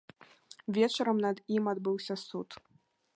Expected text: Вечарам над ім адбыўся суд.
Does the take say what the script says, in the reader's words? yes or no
yes